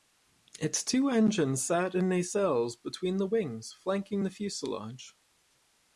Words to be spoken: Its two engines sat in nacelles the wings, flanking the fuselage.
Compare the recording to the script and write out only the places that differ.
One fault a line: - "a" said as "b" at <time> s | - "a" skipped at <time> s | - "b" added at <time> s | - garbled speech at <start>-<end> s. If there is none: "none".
- "between" added at 2.8 s